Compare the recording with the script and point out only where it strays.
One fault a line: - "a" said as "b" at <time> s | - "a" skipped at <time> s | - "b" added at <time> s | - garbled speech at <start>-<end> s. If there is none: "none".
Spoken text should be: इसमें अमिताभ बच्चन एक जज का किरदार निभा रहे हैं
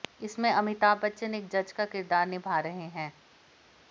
none